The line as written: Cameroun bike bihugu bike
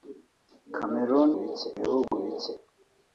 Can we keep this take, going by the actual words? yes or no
yes